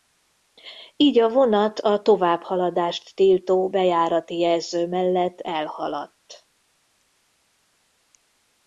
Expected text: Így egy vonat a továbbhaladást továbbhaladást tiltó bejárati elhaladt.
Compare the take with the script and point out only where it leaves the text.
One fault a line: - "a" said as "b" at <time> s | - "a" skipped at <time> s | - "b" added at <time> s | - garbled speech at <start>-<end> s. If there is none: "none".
- "egy" said as "a" at 1.2 s
- "továbbhaladást" skipped at 3.1 s
- "jelző mellett" added at 4.4 s